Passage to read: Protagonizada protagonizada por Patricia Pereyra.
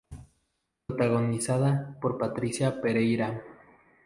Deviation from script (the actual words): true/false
true